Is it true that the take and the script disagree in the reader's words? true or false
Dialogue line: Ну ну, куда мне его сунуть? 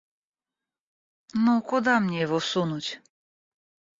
true